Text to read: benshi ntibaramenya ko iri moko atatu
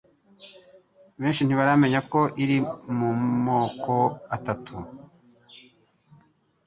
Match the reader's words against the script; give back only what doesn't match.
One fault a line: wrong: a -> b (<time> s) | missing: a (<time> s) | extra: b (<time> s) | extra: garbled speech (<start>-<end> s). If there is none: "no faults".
extra: mu (3.0 s)